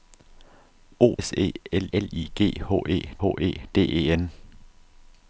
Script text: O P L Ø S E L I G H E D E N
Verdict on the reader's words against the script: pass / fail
fail